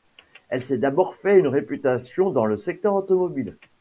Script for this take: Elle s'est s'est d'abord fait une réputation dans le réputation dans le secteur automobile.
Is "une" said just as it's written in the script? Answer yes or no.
yes